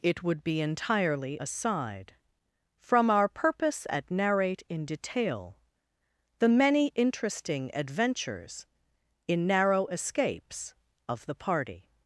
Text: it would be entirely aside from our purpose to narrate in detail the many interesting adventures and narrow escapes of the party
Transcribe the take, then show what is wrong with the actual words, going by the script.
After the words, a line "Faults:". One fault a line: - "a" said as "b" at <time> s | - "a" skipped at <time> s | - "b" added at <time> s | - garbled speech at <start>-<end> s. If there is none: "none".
it would be entirely aside from our purpose at narrate in detail the many interesting adventures in narrow escapes of the party
Faults:
- "to" said as "at" at 3.9 s
- "and" said as "in" at 9.3 s